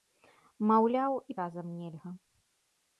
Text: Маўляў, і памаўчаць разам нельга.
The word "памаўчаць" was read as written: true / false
false